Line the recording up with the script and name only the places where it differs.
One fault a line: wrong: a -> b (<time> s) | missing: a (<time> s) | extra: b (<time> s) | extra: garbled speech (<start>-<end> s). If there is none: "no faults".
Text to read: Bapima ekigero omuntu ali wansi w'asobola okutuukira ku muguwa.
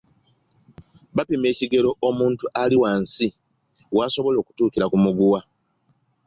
no faults